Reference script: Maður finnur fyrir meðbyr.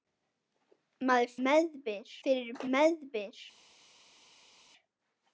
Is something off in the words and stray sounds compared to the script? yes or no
yes